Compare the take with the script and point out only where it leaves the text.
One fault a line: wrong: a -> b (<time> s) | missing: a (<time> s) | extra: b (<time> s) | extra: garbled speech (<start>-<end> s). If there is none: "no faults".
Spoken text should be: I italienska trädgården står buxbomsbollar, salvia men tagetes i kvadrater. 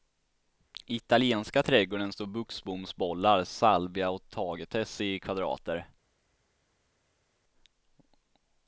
wrong: men -> och (4.1 s)